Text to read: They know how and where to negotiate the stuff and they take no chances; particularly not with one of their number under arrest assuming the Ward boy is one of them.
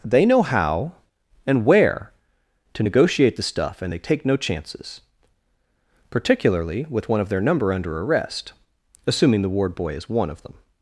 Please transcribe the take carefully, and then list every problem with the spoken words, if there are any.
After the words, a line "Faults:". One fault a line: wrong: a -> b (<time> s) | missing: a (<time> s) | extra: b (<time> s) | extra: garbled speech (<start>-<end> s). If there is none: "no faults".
They know how and where to negotiate the stuff and they take no chances; particularly with one of their number under arrest assuming the Ward boy is one of them.
Faults:
missing: not (6.9 s)